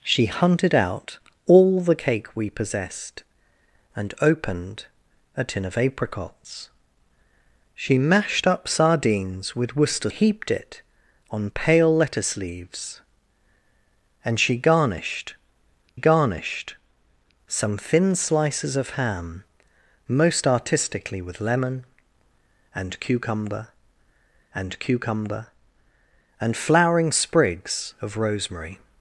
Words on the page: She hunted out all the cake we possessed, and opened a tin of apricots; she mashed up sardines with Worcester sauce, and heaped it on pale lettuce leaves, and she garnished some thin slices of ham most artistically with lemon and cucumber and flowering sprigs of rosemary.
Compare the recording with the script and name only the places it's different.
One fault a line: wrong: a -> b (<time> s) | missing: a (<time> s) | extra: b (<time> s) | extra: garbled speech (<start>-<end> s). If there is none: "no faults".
missing: sauce and (10.1 s)
extra: garnished (15.9 s)
extra: cucumber and (24.8 s)